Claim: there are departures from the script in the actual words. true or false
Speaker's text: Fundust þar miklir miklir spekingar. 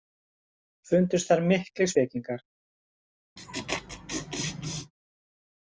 true